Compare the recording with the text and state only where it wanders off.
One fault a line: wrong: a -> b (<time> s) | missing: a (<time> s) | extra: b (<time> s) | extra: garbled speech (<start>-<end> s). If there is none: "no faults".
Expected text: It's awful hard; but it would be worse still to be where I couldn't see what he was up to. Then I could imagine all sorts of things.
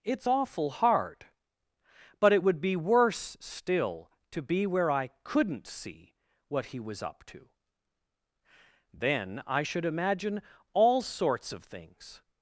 wrong: could -> should (9.6 s)